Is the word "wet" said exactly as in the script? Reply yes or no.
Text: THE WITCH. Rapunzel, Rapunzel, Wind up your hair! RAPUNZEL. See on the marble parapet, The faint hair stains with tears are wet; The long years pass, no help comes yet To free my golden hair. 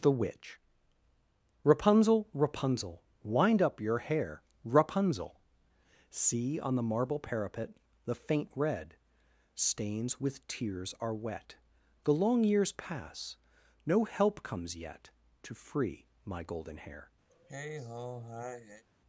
yes